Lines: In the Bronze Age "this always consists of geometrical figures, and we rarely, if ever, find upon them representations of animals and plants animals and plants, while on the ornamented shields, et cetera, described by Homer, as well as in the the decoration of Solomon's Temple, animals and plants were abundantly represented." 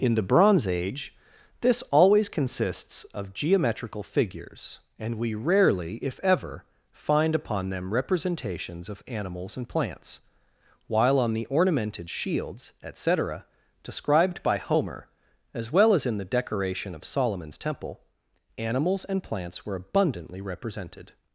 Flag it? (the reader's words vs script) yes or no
yes